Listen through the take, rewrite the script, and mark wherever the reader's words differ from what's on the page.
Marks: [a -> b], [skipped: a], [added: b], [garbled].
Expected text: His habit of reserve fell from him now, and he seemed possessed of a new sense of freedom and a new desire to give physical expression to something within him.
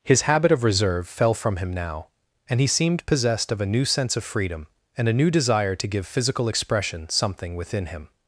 His habit of reserve fell from him now, and he seemed possessed of a new sense of freedom and a new desire to give physical expression [skipped: to] something within him.